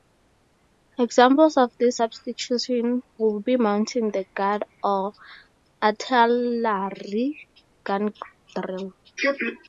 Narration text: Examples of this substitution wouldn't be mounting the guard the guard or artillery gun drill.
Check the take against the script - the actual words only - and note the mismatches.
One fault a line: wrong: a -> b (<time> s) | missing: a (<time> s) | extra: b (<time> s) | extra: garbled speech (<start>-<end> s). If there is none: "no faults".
wrong: wouldn't -> would (3.2 s)
missing: the guard (4.6 s)